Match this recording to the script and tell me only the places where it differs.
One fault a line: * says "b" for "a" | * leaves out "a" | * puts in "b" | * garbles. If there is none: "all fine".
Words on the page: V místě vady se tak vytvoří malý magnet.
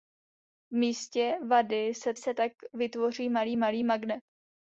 * puts in "se"
* puts in "malý"